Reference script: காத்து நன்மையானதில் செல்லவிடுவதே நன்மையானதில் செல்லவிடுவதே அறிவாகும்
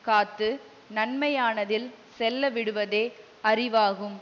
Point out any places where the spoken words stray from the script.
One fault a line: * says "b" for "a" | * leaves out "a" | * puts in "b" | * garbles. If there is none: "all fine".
* leaves out "நன்மையானதில் செல்லவிடுவதே"